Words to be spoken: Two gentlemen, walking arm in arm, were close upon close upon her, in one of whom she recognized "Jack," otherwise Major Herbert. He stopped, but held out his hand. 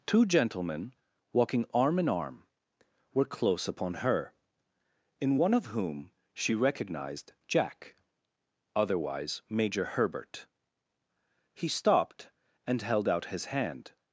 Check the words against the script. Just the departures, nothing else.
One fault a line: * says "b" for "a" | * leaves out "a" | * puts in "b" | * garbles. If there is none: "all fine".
* leaves out "close upon"
* says "and" for "but"